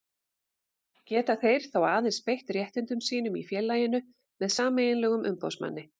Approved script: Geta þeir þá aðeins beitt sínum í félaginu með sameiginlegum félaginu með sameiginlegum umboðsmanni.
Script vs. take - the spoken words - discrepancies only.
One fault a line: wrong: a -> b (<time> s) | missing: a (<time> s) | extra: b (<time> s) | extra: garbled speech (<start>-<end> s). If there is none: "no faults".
extra: réttindum (2.6 s)
missing: félaginu með sameiginlegum (5.3 s)